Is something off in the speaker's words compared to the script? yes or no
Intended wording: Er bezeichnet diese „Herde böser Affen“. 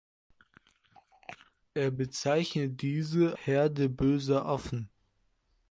no